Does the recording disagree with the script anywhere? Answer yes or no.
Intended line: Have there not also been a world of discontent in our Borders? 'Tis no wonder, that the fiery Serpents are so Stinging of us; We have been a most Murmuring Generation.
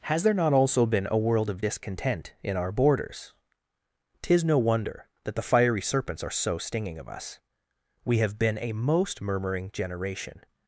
yes